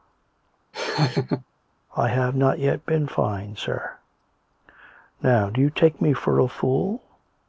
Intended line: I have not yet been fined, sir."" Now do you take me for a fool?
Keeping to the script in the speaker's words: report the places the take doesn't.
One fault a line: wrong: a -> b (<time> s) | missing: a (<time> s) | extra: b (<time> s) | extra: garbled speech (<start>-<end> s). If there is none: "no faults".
no faults